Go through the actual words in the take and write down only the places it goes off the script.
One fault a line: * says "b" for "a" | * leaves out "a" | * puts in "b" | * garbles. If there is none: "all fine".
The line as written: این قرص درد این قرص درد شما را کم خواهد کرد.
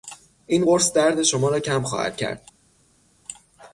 * leaves out "این قرص درد"